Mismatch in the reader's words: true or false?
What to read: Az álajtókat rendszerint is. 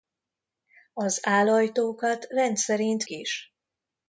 false